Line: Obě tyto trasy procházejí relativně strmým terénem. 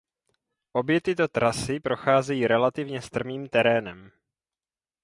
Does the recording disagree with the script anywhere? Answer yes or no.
no